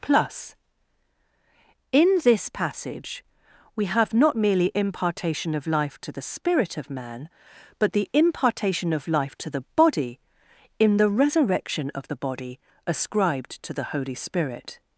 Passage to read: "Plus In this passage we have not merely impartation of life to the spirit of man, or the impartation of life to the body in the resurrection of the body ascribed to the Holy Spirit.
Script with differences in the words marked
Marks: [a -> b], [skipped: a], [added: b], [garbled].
"Plus In this passage we have not merely impartation of life to the spirit of man, [or -> but] the impartation of life to the body in the resurrection of the body ascribed to the Holy Spirit.